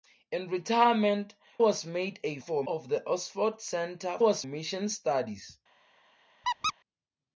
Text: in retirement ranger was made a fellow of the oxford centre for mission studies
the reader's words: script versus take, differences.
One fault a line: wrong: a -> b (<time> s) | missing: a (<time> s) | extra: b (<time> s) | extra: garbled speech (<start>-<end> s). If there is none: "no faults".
missing: ranger (1.4 s)
wrong: fellow -> for (2.4 s)
wrong: for -> was (4.2 s)